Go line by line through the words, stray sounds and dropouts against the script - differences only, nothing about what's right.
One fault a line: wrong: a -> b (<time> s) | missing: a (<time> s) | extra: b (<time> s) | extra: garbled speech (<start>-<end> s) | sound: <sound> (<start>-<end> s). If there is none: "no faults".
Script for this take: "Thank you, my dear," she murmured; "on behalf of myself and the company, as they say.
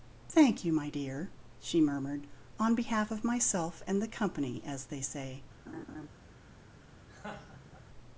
sound: laugh (5.7-6.1 s)
sound: laugh (7.1-7.9 s)